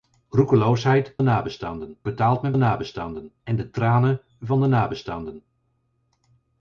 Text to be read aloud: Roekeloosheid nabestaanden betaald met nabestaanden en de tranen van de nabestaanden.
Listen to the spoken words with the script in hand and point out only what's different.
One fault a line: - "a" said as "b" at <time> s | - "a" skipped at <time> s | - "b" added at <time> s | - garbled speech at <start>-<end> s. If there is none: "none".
none